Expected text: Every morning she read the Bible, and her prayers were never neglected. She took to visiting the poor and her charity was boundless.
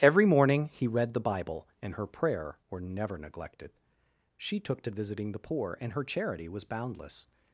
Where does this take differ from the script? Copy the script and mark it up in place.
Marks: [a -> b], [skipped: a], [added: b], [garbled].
Every morning [she -> he] read the Bible, and her [prayers -> prayer] were never neglected. She took to visiting the poor and her charity was boundless.